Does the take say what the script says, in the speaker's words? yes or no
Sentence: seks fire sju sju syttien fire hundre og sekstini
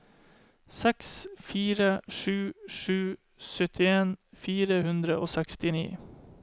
yes